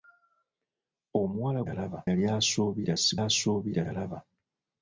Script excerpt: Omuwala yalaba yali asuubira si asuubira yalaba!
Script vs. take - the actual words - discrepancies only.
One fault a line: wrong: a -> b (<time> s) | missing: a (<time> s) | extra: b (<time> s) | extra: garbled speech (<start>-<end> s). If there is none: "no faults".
no faults